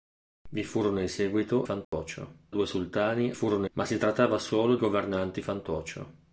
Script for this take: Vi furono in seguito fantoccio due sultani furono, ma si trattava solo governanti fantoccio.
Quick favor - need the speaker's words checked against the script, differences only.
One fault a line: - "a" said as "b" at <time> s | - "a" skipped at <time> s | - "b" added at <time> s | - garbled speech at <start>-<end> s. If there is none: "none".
none